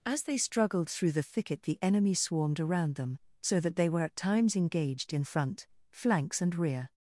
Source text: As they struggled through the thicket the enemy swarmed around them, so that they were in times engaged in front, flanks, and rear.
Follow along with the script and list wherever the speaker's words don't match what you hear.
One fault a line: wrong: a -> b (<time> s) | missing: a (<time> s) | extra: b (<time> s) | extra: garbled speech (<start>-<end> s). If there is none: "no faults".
wrong: in -> at (4.0 s)